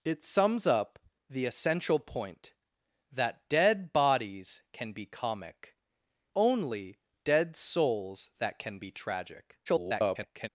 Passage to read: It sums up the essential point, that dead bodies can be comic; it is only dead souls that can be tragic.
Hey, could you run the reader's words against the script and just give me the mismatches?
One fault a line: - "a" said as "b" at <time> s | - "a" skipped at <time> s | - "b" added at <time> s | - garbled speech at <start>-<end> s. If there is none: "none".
- "it is" skipped at 5.8 s
- garbled speech at 9.7-10.5 s